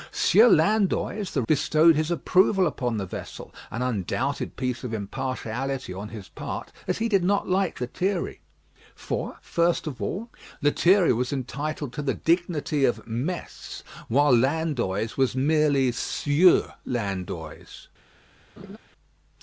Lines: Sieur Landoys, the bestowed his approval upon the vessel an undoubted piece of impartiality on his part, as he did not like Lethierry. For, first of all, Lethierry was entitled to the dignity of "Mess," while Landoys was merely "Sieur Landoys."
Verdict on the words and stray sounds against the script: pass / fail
fail